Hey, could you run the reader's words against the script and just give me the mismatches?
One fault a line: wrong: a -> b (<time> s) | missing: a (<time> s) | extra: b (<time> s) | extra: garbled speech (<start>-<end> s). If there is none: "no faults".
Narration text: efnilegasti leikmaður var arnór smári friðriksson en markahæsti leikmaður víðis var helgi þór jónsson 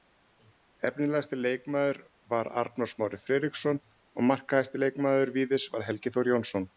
wrong: en -> og (4.0 s)